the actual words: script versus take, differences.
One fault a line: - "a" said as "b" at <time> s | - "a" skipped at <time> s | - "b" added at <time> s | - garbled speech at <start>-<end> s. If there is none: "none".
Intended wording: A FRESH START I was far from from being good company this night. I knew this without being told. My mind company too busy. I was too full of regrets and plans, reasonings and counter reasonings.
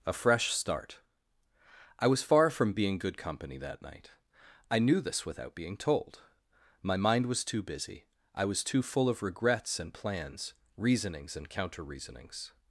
- "from" skipped at 2.7 s
- "this" said as "that" at 3.6 s
- "company" said as "was" at 7.3 s